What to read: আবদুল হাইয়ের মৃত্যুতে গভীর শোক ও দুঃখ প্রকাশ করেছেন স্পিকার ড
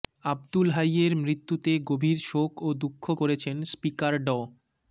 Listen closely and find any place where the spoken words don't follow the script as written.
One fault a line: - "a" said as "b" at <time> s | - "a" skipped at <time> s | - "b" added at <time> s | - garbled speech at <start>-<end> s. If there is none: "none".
- "প্রকাশ" skipped at 3.0 s